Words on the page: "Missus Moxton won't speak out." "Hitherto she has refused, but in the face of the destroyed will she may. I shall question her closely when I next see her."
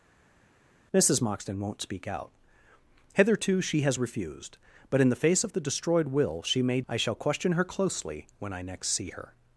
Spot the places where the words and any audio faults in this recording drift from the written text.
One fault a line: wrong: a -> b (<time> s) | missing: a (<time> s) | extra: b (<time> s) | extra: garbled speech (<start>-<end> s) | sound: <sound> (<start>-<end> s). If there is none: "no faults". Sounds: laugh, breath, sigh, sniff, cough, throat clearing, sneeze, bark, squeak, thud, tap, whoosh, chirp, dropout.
no faults